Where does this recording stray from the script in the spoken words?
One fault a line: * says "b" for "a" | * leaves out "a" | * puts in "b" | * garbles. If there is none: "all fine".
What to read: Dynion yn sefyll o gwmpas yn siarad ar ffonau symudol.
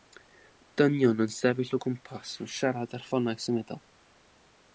all fine